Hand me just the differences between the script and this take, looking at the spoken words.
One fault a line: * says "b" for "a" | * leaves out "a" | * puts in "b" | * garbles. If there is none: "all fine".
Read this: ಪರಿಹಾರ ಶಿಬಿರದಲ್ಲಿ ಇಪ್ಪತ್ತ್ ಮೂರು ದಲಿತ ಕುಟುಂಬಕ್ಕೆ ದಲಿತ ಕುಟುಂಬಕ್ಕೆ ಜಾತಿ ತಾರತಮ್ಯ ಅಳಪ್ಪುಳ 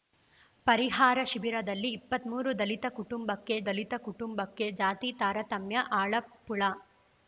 all fine